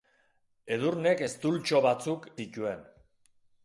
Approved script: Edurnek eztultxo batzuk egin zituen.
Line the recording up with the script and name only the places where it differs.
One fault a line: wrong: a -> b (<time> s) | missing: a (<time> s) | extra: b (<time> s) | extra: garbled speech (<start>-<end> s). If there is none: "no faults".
missing: egin (2.3 s)